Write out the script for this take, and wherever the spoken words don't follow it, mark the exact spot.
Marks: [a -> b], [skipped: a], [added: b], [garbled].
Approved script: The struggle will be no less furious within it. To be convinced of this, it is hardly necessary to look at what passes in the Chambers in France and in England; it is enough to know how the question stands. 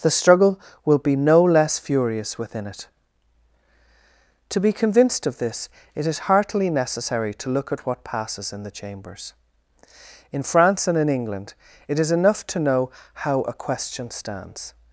The struggle will be no less furious within it. To be convinced of this, it is [hardly -> heartily] necessary to look at what passes in the Chambers in France and in England; it is enough to know how [the -> a] question stands.